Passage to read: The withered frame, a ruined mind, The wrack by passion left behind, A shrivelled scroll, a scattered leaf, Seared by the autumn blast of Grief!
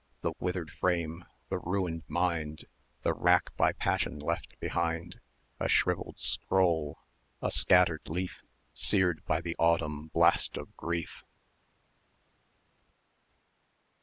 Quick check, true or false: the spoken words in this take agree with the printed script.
false